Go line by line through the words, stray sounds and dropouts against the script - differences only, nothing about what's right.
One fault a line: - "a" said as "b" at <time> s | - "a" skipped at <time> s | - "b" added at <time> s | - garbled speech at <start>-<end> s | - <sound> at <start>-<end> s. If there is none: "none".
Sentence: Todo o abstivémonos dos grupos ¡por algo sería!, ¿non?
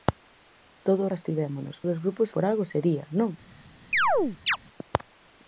- chirp at 3.9-4.6 s